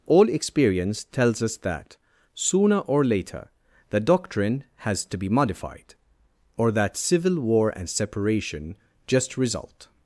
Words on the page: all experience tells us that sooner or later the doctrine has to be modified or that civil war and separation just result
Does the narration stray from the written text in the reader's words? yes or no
no